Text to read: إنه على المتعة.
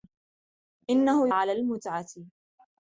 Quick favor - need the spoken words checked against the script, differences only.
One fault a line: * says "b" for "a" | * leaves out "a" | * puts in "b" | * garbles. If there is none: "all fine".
all fine